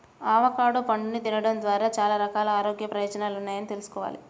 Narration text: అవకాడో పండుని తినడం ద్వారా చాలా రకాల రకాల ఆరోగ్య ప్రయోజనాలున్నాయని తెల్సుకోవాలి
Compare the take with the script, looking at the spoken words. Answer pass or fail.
fail